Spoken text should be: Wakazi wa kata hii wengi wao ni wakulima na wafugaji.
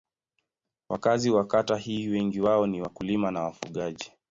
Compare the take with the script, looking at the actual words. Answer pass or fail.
pass